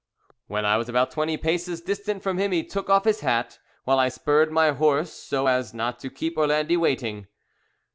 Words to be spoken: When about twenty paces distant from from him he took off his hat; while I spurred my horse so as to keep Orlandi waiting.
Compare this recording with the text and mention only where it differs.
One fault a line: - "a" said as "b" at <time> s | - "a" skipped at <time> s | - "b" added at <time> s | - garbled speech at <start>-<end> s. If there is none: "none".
- "I was" added at 0.7 s
- "from" skipped at 2.4 s
- "not" added at 5.7 s